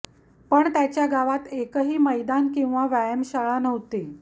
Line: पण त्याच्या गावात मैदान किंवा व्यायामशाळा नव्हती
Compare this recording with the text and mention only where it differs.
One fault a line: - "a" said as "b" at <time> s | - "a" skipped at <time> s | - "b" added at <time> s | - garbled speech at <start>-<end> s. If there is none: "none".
- "एकही" added at 1.5 s